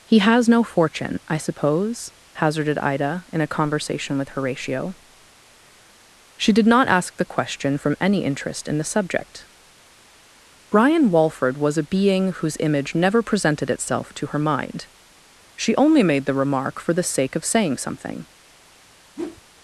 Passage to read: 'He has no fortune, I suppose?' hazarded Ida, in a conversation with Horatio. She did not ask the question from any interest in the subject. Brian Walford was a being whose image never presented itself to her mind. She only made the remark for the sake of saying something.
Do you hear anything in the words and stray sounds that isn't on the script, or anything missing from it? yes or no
yes